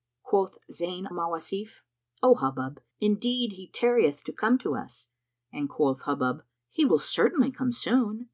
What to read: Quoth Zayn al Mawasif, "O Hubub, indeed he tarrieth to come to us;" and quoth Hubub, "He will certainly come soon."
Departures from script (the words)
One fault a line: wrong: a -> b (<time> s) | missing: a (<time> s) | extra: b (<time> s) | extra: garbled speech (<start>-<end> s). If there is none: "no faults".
missing: al (1.1 s)